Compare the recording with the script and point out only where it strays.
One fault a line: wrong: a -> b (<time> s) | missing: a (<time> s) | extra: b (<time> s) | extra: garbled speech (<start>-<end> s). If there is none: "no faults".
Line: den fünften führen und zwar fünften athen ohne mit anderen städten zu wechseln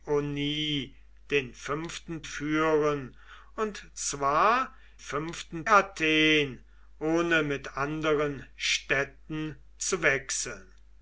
no faults